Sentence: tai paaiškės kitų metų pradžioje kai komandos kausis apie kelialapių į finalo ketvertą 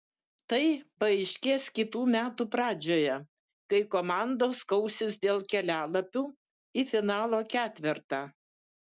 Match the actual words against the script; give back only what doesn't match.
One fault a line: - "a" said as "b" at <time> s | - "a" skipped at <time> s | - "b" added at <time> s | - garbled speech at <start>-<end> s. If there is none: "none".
- "apie" said as "dėl" at 5.3 s